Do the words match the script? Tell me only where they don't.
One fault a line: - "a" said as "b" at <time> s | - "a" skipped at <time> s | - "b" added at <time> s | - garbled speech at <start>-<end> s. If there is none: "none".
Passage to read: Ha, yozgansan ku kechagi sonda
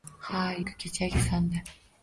- "yozgansan" skipped at 0.4 s